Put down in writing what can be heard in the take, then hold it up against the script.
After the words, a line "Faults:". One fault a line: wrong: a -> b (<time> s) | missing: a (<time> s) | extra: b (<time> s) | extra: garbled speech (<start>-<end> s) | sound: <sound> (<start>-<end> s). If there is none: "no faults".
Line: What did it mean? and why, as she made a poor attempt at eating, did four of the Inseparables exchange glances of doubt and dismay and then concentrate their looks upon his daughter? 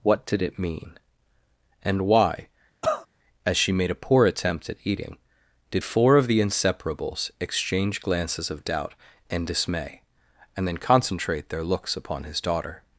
What did it mean? and why, as she made a poor attempt at eating, did four of the Inseparables exchange glances of doubt and dismay and then concentrate their looks upon his daughter?
Faults:
sound: cough (2.8-3.1 s)